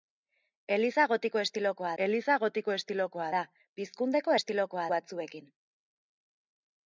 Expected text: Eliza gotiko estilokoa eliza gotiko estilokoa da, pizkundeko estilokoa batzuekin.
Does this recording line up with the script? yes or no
yes